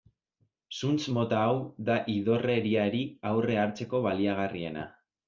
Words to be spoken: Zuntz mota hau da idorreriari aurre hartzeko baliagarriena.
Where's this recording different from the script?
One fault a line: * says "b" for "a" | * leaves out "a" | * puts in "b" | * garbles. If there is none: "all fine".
all fine